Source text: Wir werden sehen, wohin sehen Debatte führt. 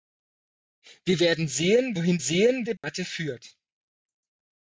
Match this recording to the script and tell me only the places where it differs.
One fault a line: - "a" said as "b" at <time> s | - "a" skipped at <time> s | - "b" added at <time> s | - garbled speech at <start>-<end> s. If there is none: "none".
none